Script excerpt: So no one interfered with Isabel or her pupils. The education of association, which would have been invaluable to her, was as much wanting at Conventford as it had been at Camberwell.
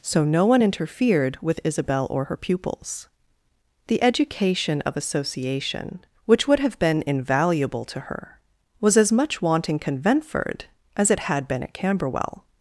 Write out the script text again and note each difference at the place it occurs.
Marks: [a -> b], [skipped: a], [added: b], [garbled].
So no one interfered with Isabel or her pupils. The education of association, which would have been invaluable to her, was as much wanting [skipped: at] Conventford as it had been at Camberwell.